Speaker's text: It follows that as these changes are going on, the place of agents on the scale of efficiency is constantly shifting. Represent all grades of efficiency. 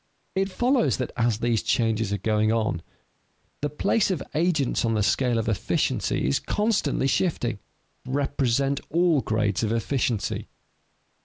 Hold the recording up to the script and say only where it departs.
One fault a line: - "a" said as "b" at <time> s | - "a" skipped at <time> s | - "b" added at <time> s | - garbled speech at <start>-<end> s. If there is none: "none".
none